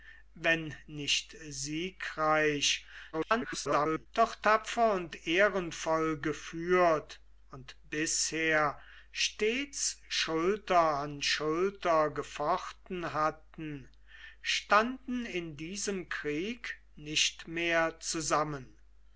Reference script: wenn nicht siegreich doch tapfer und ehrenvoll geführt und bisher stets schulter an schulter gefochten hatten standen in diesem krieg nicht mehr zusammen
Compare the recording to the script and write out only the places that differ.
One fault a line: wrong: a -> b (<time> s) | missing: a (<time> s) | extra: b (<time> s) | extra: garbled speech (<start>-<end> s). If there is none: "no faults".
extra: garbled speech (3.1-4.1 s)